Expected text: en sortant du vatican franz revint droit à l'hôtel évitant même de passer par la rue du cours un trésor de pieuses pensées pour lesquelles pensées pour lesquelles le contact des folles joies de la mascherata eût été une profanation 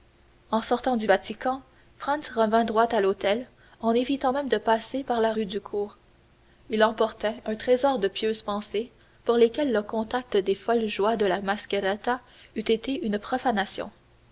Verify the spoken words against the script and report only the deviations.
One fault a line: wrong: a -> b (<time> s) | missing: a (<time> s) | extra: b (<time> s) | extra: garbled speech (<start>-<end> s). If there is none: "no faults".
extra: en (3.8 s)
extra: il emportait (6.7 s)
missing: pensées pour lesquelles (9.7 s)